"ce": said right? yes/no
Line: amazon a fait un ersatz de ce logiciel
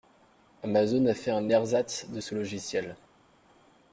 yes